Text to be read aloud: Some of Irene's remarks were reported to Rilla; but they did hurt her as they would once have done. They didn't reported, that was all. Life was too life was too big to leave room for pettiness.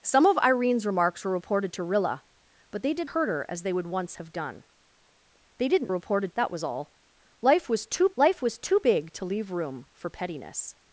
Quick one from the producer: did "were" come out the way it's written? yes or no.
yes